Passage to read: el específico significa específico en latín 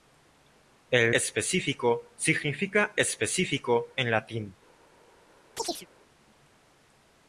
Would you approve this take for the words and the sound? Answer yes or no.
no